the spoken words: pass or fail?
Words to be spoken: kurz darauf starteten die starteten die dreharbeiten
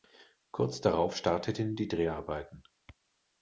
fail